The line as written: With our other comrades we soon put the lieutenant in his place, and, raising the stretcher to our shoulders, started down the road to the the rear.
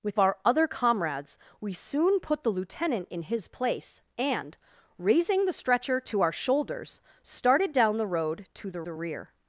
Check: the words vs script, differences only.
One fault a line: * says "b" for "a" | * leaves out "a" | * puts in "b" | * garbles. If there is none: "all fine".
all fine